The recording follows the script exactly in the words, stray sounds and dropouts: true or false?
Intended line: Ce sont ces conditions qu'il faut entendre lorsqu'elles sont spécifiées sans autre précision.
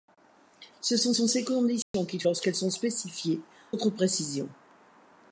false